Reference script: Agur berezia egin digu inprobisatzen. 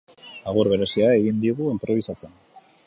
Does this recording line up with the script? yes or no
yes